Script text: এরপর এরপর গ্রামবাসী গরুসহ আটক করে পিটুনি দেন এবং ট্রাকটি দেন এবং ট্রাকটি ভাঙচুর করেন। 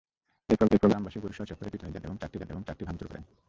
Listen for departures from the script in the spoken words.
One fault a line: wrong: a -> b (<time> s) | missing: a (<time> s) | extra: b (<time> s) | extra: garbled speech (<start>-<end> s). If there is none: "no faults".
no faults